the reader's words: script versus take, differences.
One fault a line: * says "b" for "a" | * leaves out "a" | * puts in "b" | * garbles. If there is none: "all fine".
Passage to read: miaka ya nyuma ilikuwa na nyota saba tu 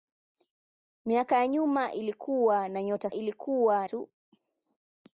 * says "ilikuwa" for "saba"